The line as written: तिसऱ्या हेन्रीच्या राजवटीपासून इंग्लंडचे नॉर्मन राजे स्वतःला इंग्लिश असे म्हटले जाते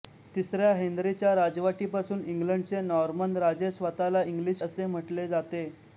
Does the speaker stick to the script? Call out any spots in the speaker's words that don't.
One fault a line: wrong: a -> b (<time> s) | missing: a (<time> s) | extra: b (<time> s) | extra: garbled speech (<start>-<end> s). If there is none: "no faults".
no faults